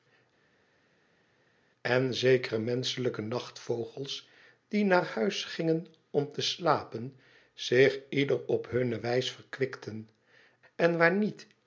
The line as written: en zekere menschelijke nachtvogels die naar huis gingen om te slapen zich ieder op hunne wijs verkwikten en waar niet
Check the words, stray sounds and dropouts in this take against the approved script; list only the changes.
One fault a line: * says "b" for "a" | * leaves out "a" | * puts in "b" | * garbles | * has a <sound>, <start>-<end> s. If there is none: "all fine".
all fine